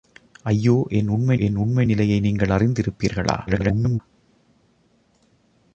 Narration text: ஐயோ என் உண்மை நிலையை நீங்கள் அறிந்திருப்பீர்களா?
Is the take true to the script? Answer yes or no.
no